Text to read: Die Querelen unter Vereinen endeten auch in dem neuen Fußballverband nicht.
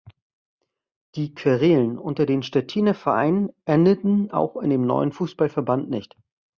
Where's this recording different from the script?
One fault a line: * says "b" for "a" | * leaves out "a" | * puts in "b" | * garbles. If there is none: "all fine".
* puts in "den Stettiner"